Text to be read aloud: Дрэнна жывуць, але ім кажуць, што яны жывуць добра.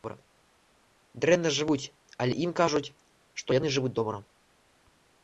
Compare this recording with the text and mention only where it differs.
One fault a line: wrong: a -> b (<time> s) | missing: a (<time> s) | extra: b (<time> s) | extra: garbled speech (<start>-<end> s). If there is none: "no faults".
no faults